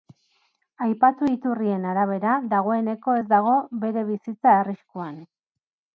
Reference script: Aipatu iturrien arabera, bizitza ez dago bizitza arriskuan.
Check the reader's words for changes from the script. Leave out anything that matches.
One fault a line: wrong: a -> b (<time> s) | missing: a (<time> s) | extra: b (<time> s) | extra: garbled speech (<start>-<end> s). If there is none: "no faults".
wrong: bizitza -> dagoeneko (2.5 s)
extra: bere (3.8 s)